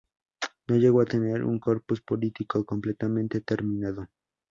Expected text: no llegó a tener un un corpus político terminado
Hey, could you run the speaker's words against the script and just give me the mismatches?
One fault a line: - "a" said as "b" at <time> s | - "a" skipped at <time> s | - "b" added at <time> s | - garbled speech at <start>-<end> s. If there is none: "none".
- "un" skipped at 1.6 s
- "completamente" added at 2.6 s